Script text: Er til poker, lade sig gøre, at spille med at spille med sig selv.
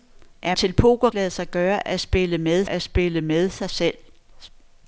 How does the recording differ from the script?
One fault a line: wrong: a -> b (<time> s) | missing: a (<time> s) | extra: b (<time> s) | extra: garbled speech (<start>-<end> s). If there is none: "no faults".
no faults